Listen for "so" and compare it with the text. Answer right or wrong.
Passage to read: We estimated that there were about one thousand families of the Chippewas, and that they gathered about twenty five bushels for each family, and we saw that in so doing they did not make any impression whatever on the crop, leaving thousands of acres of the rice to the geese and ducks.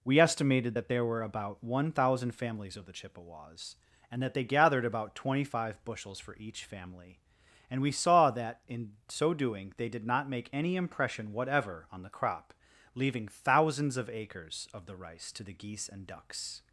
right